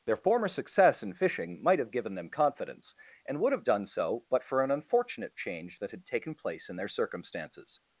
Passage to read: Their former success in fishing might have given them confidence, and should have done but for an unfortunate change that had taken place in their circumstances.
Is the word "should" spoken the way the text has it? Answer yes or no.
no